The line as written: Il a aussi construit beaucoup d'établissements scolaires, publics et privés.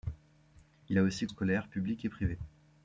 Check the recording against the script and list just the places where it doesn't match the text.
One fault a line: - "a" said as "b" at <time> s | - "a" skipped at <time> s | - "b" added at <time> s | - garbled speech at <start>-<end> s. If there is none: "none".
- "construit beaucoup d'établissements" skipped at 1.3 s